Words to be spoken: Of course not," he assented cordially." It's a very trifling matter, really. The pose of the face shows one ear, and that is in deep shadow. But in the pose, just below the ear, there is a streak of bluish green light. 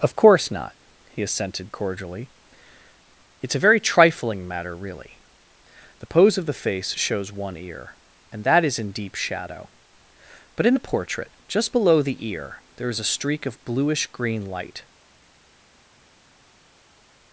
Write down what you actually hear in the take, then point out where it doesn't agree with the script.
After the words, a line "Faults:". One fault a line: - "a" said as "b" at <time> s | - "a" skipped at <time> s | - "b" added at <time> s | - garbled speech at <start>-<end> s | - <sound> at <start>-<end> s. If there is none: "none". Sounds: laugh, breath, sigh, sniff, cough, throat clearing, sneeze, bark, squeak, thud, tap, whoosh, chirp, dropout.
Of course not," he assented cordially." It's a very trifling matter, really. The pose of the face shows one ear, and that is in deep shadow. But in the portrait, just below the ear, there is a streak of bluish green light.
Faults:
- "pose" said as "portrait" at 10.9 s